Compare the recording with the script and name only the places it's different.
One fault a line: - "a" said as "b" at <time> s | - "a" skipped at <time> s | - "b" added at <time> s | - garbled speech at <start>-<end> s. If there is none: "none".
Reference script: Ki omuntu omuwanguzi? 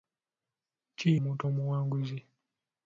none